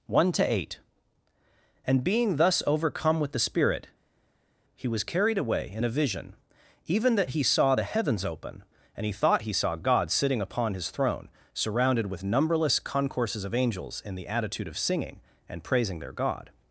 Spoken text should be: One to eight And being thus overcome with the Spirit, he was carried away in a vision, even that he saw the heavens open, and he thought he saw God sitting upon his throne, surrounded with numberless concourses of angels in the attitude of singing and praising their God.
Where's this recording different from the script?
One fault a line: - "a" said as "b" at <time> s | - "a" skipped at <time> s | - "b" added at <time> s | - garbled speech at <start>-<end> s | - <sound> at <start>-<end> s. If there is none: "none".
none